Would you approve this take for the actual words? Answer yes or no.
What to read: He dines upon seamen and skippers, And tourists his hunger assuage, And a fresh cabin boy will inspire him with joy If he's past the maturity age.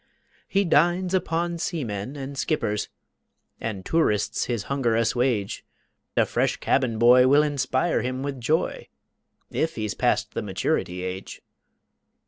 no